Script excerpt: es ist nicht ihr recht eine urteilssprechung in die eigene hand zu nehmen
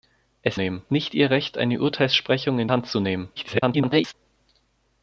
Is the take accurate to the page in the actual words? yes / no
no